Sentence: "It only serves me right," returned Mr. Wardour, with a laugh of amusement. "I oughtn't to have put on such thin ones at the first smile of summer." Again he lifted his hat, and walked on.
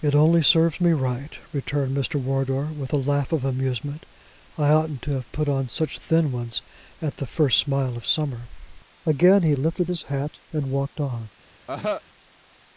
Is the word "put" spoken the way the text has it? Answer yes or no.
yes